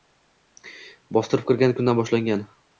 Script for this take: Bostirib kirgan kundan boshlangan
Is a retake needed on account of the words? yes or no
no